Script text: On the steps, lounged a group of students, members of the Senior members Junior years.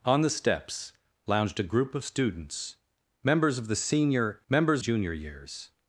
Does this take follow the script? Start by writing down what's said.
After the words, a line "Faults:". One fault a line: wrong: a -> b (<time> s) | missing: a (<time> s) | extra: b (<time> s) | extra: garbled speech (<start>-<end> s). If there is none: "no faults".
On the steps, lounged a group of students, members of the Senior members Junior years.
Faults:
no faults